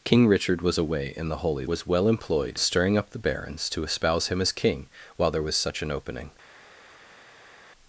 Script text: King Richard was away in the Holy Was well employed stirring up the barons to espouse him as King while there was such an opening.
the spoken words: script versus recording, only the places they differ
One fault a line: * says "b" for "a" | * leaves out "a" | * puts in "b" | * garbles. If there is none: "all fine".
all fine